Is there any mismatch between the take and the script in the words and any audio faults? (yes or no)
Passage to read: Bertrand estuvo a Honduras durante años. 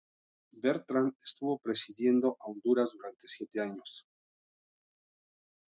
yes